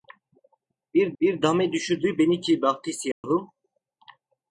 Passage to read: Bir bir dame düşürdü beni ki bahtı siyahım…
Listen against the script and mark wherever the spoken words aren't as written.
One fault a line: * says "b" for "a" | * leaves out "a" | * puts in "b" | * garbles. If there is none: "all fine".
all fine